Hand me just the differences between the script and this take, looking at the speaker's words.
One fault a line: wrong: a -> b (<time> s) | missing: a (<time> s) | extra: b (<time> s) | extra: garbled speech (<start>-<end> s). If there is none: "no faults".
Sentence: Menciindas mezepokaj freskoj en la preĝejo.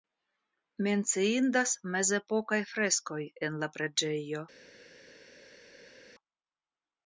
no faults